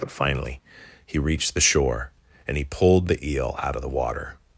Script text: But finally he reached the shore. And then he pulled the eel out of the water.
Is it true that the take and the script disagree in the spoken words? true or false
true